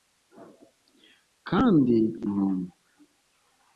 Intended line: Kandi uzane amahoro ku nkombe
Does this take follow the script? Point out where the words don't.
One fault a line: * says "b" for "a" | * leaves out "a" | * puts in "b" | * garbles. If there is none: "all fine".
* leaves out "uzane amahoro ku"